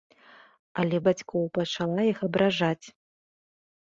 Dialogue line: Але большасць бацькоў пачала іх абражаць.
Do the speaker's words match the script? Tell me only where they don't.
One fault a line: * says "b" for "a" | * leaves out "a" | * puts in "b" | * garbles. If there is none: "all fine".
* leaves out "большасць"